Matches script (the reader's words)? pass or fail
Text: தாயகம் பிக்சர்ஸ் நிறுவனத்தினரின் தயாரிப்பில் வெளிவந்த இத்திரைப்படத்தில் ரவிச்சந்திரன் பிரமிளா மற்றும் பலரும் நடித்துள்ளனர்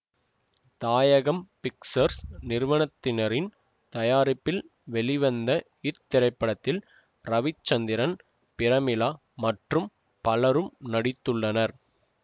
pass